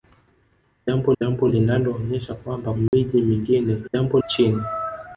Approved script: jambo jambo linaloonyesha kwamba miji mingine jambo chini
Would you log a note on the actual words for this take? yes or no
no